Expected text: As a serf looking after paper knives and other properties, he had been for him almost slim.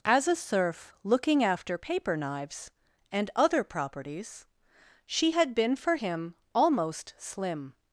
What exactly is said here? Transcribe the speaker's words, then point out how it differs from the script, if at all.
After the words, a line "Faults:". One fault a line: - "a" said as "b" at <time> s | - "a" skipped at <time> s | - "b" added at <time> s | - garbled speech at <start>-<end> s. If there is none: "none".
As a serf looking after paper knives and other properties, she had been for him almost slim.
Faults:
- "he" said as "she" at 5.0 s